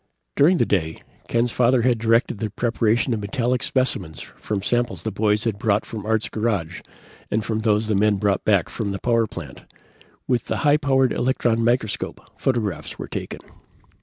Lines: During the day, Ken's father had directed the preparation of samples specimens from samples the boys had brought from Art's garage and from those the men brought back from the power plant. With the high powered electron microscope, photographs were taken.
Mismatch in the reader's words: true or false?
true